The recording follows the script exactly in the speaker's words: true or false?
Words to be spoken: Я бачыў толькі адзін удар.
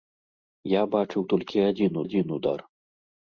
false